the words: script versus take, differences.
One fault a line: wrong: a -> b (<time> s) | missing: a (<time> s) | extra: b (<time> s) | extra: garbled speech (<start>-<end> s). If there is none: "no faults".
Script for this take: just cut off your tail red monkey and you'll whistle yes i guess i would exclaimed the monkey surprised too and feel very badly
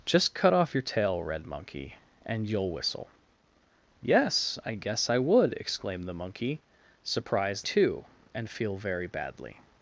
no faults